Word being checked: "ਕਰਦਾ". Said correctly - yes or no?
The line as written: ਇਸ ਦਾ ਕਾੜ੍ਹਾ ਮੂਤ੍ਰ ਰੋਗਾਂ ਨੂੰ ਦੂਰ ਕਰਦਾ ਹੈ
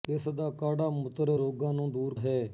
no